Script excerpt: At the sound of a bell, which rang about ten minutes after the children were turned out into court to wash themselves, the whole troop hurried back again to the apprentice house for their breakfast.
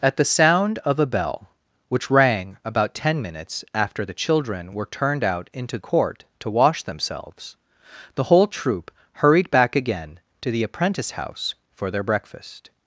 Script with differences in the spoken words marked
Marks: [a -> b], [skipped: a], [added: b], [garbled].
At the sound of a bell, which rang about ten minutes after the children were turned out into court to wash themselves, the whole troop hurried back again to the apprentice house for their breakfast.